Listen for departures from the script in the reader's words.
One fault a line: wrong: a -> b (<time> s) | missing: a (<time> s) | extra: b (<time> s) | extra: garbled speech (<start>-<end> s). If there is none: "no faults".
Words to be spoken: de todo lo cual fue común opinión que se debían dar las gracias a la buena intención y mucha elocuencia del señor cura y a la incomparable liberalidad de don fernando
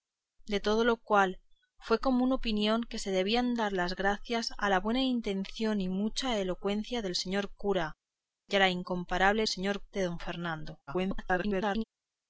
wrong: liberalidad -> señor (9.5 s)
extra: garbled speech (10.9-11.8 s)